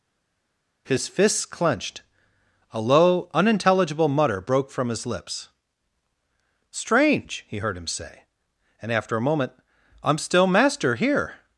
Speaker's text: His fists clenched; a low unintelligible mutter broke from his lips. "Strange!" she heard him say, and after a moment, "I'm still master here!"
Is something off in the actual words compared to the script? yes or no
yes